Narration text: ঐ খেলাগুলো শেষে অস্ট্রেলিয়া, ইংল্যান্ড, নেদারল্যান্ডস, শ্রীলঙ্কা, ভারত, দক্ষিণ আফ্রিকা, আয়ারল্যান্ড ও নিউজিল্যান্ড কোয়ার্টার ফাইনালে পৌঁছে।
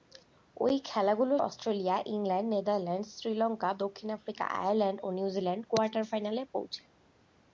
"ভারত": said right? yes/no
no